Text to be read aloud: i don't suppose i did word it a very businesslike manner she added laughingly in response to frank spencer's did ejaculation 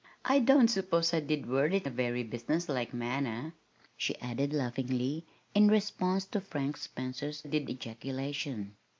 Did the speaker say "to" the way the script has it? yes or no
yes